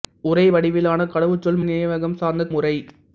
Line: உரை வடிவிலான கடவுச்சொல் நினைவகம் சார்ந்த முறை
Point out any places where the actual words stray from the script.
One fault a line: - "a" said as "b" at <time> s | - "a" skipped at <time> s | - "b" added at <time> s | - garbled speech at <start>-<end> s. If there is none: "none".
none